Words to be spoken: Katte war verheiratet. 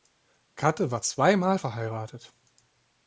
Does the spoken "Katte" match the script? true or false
true